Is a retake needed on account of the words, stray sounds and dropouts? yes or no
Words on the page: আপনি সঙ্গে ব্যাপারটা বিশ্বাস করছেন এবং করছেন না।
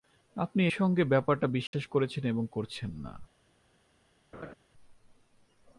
yes